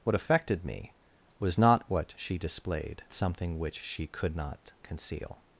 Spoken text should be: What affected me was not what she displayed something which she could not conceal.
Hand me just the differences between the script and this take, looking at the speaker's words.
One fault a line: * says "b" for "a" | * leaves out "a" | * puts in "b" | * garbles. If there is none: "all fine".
all fine